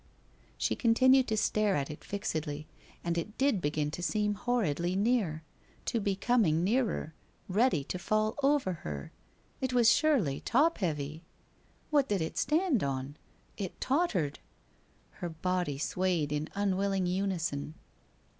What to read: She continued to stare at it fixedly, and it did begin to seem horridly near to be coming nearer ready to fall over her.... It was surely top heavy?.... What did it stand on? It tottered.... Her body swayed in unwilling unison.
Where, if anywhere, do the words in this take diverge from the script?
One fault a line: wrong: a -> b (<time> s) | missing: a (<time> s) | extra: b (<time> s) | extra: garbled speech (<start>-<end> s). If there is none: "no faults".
no faults